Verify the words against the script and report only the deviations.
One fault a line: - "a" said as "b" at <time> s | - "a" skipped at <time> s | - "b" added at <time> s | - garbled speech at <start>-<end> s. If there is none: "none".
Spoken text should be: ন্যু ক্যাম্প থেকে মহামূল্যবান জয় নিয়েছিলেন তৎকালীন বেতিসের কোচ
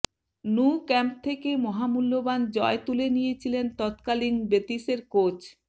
- "তুলে" added at 2.9 s